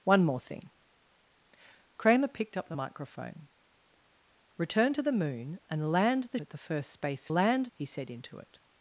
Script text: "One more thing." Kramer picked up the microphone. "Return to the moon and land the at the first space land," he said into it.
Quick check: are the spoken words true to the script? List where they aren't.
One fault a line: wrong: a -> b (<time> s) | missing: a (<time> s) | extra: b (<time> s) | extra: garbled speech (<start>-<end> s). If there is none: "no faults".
no faults